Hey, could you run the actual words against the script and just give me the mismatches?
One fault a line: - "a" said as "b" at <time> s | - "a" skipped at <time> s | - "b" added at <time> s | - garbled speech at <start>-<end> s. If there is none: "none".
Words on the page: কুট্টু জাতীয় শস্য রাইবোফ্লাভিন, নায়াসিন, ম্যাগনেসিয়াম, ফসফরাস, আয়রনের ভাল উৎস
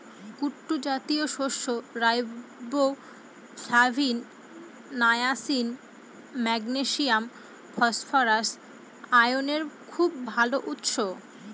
- "খুব" added at 9.9 s